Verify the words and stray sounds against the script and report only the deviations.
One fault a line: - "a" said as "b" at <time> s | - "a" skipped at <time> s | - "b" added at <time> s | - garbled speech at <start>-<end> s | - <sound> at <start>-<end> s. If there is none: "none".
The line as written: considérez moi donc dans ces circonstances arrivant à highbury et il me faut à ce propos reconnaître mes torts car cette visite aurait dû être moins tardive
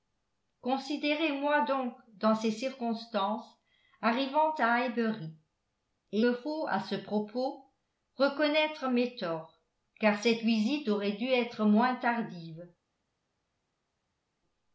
- "il" skipped at 6.2 s